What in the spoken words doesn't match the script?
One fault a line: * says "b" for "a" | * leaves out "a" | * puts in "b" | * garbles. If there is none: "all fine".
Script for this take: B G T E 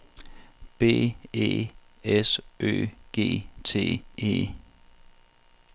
* puts in "E S Ø"